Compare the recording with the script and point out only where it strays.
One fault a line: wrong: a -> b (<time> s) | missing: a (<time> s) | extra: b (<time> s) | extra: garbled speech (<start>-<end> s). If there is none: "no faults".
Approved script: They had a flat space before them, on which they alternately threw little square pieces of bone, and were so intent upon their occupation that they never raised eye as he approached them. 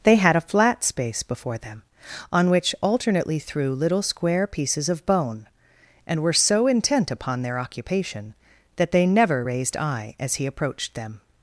missing: they (2.8 s)